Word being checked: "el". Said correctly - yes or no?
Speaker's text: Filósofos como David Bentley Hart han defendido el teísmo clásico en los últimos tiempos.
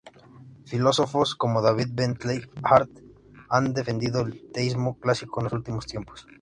yes